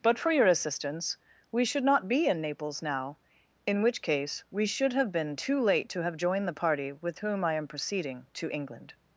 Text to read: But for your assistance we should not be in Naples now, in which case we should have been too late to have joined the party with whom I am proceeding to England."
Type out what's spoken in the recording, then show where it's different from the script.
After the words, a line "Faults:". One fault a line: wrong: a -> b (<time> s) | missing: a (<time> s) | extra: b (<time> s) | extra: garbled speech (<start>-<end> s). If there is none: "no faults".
But for your assistance we should not be in Naples now, in which case we should have been too late to have joined the party with whom I am proceeding to England."
Faults:
no faults